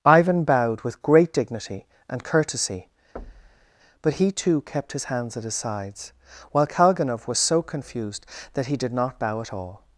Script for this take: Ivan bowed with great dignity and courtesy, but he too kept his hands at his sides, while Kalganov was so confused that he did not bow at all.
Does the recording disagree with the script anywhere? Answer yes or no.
no